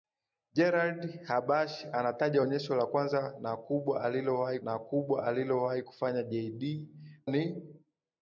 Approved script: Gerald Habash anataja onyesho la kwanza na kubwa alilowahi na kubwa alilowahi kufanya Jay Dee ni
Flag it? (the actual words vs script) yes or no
no